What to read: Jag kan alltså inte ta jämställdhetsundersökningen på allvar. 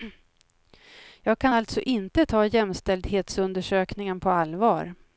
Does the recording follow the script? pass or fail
pass